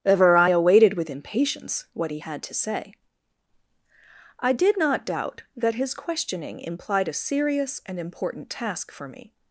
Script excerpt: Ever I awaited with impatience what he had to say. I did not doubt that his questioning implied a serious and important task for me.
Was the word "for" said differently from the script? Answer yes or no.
no